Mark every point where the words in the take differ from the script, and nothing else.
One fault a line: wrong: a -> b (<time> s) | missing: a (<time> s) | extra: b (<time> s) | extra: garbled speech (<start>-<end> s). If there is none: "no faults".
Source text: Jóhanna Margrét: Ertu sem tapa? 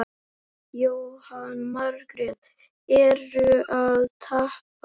wrong: sem -> að (3.8 s)